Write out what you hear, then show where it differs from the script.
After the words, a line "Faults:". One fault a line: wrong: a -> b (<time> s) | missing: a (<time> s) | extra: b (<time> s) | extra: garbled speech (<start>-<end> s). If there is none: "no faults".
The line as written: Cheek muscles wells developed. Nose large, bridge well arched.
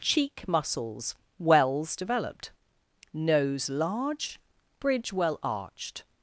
Cheek muscles wells developed. Nose large, bridge well arched.
Faults:
no faults